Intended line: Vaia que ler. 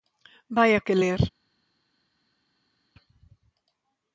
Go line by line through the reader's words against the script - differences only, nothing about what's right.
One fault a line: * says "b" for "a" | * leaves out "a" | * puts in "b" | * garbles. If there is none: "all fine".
all fine